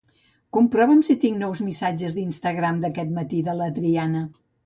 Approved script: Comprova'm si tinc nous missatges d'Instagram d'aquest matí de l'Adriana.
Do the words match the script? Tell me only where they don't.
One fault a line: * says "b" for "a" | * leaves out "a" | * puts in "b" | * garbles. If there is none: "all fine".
all fine